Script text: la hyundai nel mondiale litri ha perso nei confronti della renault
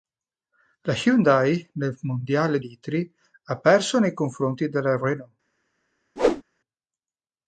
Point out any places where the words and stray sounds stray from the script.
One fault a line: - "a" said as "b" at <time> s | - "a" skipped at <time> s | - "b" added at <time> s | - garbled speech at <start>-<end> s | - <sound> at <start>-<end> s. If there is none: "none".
- whoosh at 6.2-6.4 s